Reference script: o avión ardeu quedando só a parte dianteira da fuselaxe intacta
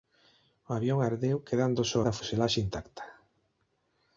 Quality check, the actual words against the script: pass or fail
fail